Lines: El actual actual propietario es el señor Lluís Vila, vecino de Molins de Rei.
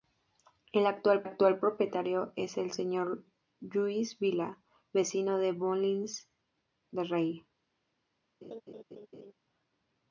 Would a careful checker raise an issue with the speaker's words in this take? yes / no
no